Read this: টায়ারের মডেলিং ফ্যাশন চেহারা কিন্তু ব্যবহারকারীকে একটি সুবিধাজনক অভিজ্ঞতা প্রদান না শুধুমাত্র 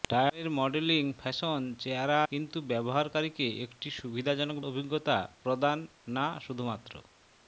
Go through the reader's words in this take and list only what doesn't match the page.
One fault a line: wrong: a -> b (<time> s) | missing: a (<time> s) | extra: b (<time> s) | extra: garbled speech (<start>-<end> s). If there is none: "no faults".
no faults